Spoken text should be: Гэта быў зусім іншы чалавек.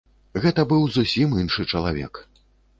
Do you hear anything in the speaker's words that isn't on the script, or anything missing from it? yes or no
no